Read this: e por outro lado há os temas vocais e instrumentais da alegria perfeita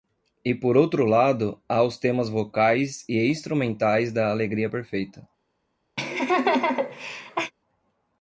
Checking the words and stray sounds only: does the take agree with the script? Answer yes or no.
no